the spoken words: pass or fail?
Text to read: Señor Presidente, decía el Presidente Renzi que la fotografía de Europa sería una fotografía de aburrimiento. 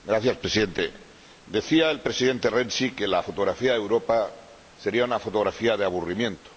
pass